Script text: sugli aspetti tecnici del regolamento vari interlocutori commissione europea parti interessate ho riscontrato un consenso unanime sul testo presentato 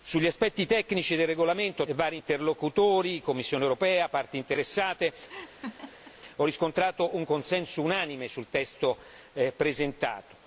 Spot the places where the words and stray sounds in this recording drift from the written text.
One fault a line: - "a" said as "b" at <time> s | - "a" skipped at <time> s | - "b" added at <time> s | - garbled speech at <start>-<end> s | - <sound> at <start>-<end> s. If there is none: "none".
- laugh at 5.3-6.2 s